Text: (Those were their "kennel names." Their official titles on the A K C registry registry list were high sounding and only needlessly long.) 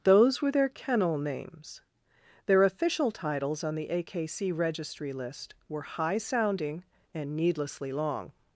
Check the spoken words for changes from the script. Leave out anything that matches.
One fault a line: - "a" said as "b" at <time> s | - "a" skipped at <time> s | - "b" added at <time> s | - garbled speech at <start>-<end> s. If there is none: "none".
- "registry" skipped at 5.1 s
- "only" skipped at 7.3 s